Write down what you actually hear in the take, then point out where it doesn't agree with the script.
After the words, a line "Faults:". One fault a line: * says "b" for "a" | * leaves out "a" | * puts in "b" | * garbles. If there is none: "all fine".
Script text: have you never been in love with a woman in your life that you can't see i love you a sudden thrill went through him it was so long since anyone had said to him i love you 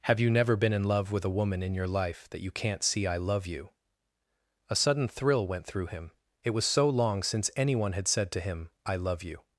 have you never been in love with a woman in your life that you can't see i love you a sudden thrill went through him it was so long since anyone had said to him i love you
Faults:
all fine